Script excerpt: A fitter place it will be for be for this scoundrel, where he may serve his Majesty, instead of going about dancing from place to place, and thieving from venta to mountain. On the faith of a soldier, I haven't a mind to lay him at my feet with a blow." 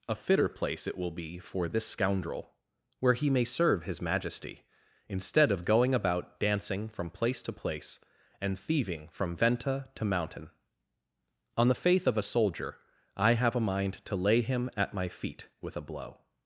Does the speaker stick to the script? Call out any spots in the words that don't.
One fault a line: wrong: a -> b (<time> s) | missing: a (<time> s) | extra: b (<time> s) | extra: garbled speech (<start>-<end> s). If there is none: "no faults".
missing: be for (1.7 s)
wrong: haven't -> have (13.3 s)